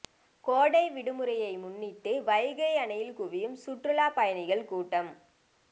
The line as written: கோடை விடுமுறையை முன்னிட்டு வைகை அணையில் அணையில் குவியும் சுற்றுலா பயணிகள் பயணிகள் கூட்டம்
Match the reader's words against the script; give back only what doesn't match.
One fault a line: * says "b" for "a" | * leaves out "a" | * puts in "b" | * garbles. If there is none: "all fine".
* leaves out "அணையில்"
* leaves out "பயணிகள்"